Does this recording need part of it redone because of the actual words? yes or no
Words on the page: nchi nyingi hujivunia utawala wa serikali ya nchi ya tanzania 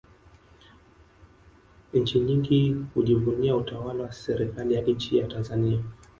no